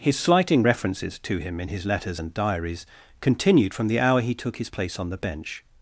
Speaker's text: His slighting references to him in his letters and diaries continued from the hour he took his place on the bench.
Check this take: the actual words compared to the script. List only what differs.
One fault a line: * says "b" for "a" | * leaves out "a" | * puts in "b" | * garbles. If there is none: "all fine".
all fine